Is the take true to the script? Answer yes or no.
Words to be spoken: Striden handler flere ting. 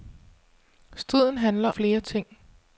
yes